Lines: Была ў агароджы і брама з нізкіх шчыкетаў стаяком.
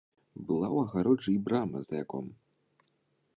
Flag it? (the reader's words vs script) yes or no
yes